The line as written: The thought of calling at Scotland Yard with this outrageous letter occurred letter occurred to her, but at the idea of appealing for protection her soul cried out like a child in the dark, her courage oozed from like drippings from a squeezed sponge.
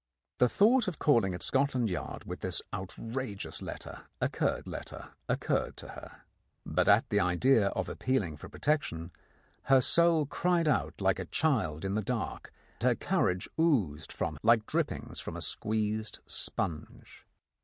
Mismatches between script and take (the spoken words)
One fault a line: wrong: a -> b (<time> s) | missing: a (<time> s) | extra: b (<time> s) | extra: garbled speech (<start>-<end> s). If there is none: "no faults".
no faults